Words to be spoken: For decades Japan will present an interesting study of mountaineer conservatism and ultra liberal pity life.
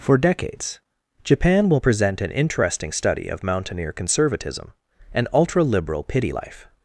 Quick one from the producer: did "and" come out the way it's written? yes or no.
yes